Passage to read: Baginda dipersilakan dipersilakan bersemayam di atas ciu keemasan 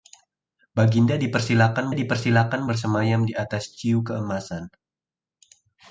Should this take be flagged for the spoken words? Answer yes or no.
no